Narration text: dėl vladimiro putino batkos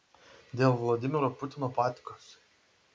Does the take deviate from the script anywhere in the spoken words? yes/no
no